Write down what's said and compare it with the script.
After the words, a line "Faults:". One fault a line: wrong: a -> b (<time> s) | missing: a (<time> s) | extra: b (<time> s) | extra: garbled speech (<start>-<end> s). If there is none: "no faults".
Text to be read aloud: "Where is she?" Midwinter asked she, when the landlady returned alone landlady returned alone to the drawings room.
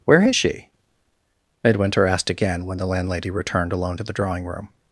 "Where is she?" Midwinter asked again, when the landlady returned alone to the drawing room.
Faults:
wrong: she -> again (2.3 s)
missing: landlady returned alone (4.0 s)
wrong: drawings -> drawing (4.1 s)